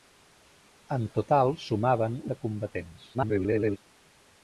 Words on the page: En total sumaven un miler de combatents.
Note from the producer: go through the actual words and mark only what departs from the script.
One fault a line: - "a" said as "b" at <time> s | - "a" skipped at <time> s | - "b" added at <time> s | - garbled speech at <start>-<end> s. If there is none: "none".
- "un miler" skipped at 2.2 s
- garbled speech at 3.1-3.8 s